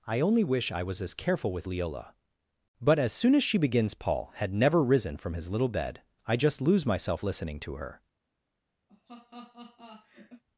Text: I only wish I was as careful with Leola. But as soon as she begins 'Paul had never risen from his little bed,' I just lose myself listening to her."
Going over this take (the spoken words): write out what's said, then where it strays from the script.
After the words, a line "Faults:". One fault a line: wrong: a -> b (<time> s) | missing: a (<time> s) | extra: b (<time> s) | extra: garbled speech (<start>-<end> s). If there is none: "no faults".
I only wish I was as careful with Leola. But as soon as she begins 'Paul had never risen from his little bed,' I just lose myself listening to her."
Faults:
no faults